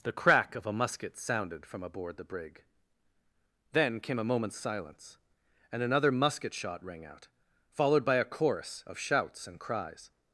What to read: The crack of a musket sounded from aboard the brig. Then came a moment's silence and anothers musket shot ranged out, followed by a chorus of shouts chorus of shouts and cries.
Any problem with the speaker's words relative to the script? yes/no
yes